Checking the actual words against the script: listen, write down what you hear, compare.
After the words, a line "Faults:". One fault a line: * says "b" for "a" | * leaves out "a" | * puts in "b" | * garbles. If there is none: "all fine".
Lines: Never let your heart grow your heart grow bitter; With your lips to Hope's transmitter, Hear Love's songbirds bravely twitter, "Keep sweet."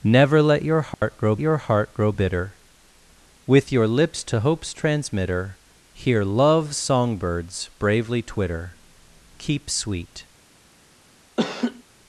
Never let your heart grow your heart grow bitter; With your lips to Hope's transmitter, Hear Love's songbirds bravely twitter, "Keep sweet."
Faults:
all fine